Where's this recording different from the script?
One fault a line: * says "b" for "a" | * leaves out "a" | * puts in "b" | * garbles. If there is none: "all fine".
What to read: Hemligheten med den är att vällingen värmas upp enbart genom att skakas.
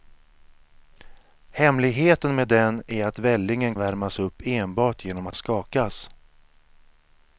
all fine